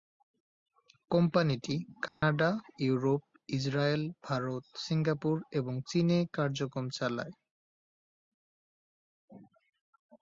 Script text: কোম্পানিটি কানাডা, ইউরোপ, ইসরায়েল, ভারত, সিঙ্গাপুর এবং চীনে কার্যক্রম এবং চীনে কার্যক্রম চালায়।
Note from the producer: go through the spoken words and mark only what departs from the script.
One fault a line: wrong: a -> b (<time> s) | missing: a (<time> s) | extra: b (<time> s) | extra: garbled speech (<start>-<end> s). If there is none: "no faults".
missing: এবং চীনে কার্যক্রম (6.9 s)